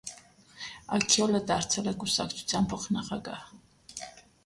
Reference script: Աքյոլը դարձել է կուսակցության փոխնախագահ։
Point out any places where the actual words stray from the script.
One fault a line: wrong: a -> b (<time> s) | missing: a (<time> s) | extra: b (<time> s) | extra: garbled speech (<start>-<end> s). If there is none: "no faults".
no faults